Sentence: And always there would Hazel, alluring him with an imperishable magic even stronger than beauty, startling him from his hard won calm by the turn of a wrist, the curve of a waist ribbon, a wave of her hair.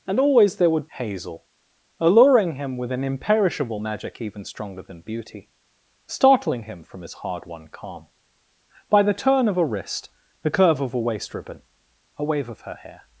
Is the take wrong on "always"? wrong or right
right